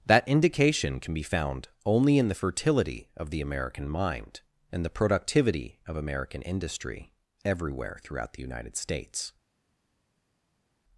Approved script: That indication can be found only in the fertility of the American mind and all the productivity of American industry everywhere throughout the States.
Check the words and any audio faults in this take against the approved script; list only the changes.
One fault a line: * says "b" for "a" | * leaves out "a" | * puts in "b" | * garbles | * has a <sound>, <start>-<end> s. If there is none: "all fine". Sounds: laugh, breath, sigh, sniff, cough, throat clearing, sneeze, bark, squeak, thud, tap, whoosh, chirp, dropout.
* leaves out "all"
* puts in "United"